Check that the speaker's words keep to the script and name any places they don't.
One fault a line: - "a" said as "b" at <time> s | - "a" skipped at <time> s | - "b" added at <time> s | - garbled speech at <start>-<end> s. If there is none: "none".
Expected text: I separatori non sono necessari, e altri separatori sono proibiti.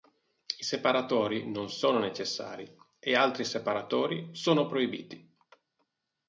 none